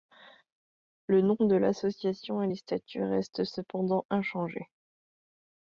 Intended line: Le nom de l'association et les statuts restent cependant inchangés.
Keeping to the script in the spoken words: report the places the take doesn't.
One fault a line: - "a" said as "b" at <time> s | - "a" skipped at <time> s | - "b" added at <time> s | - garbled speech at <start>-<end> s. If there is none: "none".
none